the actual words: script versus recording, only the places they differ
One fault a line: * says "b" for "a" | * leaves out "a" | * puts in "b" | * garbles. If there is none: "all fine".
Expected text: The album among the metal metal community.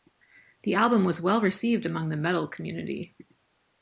* puts in "was well received"
* leaves out "metal"